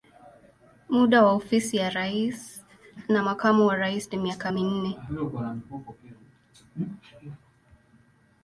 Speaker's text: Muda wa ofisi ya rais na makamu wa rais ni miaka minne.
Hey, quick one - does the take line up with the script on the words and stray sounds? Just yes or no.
yes